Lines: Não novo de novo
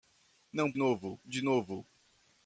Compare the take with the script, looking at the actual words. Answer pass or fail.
pass